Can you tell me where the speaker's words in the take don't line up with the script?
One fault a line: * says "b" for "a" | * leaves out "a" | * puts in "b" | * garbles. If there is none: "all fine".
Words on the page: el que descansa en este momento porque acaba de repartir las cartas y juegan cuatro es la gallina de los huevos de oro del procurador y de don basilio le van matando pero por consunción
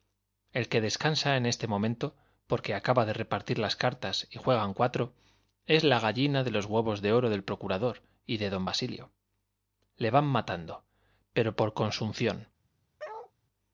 all fine